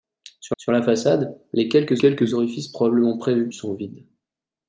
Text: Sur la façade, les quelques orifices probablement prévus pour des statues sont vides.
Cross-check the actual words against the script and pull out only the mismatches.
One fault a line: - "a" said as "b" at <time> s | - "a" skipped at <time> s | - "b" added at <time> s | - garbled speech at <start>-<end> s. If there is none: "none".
- "sur" added at 0.6 s
- "quelques" added at 2.0 s
- "pour des statues" skipped at 3.5 s